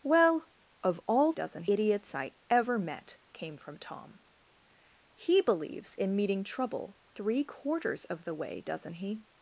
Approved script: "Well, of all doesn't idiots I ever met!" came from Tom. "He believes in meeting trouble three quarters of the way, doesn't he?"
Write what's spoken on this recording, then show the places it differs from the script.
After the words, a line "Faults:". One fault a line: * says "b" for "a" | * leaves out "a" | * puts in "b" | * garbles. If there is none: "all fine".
"Well, of all doesn't idiots I ever met!" came from Tom. "He believes in meeting trouble three quarters of the way, doesn't he?"
Faults:
all fine